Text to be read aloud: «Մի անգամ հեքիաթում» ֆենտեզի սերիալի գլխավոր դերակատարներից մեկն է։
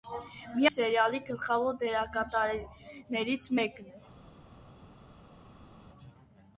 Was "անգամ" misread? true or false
true